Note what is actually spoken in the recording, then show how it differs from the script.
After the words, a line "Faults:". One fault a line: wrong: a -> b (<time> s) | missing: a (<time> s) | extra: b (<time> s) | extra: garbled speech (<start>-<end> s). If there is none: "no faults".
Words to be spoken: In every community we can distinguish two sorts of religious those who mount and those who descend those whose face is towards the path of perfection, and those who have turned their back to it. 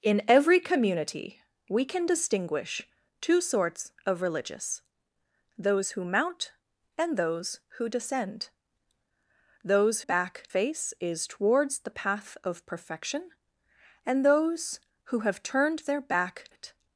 In every community we can distinguish two sorts of religious those who mount and those who descend those back face is towards the path of perfection, and those who have turned their back it.
Faults:
wrong: whose -> back (10.0 s)
missing: to (16.5 s)